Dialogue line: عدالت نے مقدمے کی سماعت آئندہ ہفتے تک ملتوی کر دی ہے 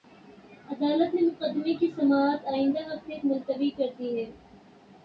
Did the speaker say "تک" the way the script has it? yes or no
no